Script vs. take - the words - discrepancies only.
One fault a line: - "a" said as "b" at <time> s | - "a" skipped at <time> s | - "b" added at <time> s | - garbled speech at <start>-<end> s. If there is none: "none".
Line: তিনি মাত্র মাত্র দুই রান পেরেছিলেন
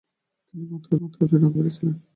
none